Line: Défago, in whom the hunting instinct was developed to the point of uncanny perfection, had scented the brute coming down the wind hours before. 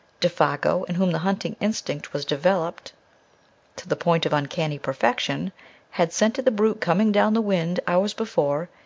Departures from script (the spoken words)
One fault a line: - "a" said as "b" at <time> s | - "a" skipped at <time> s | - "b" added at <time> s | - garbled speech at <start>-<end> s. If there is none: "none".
none